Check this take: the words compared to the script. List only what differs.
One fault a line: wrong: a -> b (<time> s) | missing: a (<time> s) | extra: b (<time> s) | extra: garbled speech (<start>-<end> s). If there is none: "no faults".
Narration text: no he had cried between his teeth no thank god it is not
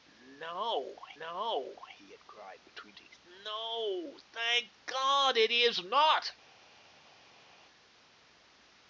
extra: no (1.2 s)
missing: his (3.0 s)